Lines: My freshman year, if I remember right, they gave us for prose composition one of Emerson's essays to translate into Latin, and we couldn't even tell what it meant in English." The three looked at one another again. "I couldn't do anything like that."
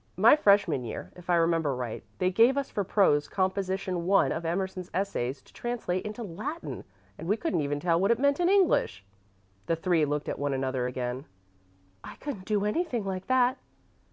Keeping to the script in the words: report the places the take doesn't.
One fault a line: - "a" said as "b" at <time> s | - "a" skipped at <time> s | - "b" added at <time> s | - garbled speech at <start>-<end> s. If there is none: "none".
none